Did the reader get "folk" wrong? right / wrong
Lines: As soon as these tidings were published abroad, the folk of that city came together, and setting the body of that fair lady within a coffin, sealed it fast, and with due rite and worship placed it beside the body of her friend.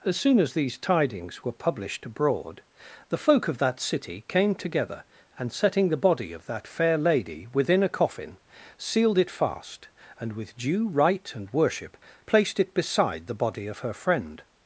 right